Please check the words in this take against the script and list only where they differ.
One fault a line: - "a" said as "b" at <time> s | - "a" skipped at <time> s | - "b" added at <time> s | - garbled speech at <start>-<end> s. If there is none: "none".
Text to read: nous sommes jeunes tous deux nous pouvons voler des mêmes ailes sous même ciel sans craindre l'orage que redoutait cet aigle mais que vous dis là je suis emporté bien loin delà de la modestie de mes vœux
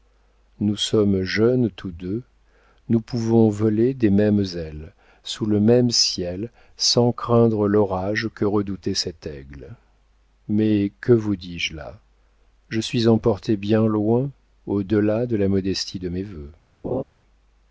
- "le" added at 5.5 s
- "je" added at 11.6 s
- "au" added at 14.7 s